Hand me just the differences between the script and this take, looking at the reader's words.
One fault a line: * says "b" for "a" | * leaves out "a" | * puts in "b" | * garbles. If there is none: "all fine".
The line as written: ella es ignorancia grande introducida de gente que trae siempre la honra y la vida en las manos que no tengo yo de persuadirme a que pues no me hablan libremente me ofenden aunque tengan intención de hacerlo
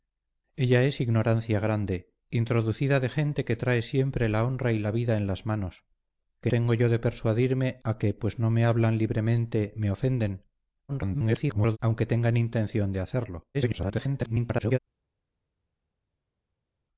* leaves out "no"
* garbles
* garbles